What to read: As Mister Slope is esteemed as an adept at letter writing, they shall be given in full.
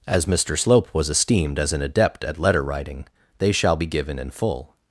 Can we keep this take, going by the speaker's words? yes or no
no